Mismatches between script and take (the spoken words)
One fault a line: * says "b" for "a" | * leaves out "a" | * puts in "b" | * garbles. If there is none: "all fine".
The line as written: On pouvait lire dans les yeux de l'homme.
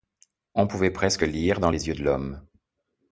* puts in "presque"